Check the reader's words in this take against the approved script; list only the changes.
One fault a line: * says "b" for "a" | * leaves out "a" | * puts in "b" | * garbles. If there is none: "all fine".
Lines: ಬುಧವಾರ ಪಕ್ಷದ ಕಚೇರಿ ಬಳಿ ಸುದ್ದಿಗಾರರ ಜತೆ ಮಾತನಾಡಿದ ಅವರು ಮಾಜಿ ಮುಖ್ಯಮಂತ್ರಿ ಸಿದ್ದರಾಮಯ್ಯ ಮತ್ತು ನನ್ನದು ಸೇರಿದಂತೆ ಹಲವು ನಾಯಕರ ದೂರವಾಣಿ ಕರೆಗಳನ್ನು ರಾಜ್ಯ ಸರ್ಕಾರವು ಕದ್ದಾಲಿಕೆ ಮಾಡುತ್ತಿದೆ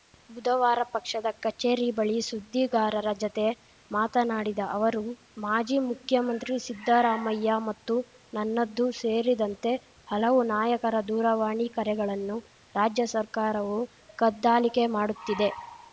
all fine